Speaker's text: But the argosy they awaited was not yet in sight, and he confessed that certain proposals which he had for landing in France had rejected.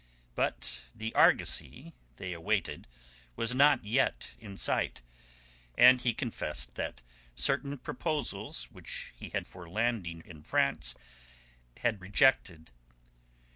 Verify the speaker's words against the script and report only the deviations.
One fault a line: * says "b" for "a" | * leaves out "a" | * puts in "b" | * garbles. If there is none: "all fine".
all fine